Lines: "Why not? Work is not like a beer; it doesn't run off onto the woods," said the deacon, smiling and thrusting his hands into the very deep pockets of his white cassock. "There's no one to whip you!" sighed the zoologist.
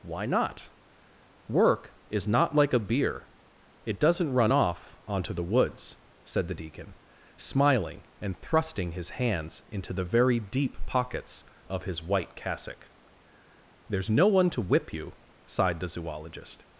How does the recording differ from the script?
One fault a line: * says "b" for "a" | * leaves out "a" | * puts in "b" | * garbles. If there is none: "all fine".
all fine